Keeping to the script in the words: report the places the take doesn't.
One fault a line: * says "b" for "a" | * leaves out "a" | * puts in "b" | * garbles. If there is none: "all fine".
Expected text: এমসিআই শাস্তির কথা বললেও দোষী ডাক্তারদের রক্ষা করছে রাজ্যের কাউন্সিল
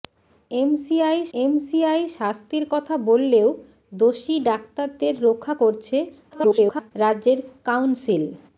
* puts in "এমসিআই"
* garbles